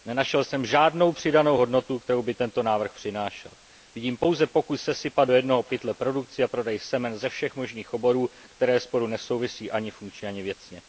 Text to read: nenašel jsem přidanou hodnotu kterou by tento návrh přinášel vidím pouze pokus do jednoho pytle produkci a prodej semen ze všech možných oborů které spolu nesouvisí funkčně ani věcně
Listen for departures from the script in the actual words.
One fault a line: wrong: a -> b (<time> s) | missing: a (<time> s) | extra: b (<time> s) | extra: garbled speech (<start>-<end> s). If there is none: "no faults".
extra: žádnou (0.7 s)
extra: sesypat (4.8 s)
extra: ani (9.7 s)